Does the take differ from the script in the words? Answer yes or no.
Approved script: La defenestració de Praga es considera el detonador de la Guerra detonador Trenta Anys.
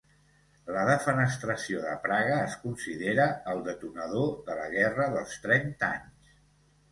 yes